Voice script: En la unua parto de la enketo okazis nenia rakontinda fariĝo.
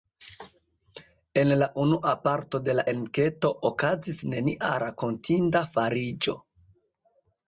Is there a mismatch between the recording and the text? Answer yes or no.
no